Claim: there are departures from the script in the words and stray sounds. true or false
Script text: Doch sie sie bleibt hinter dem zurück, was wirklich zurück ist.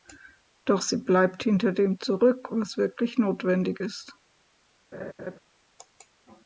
true